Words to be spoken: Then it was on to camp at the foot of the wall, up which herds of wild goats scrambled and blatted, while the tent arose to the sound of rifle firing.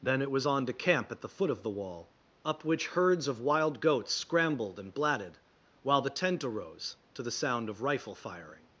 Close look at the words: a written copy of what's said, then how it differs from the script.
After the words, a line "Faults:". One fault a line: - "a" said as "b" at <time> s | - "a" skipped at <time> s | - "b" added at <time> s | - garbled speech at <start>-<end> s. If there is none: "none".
Then it was on to camp at the foot of the wall, up which herds of wild goats scrambled and blatted, while the tent arose to the sound of rifle firing.
Faults:
none